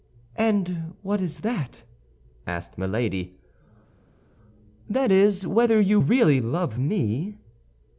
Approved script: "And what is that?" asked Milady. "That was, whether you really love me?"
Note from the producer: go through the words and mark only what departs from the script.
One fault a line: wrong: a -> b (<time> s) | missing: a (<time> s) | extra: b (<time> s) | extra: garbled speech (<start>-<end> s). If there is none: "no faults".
wrong: was -> is (5.1 s)